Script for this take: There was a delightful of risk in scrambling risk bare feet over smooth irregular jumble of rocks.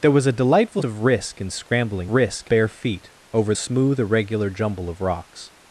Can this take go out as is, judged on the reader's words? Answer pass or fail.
pass